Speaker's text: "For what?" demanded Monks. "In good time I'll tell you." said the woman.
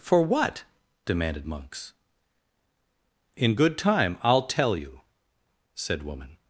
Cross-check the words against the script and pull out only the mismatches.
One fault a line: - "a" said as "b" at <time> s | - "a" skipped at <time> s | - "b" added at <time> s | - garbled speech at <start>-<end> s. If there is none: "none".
- "the" skipped at 6.0 s